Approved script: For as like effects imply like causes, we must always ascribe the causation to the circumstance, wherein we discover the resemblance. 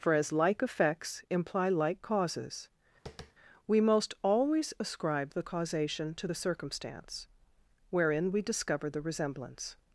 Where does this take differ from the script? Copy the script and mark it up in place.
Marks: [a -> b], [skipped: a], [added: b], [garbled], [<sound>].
For as like effects imply like causes, [tap] we [must -> most] always ascribe the causation to the circumstance, wherein we discover the resemblance.